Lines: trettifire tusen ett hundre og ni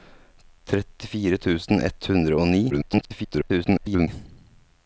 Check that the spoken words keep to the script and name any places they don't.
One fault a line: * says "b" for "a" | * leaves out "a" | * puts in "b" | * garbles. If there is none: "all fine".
* garbles